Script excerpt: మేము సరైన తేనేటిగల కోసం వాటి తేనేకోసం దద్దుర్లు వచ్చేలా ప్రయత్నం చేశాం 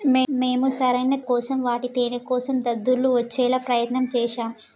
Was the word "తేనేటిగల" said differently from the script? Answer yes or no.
yes